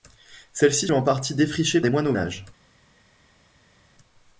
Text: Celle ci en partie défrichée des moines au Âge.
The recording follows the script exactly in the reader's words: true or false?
true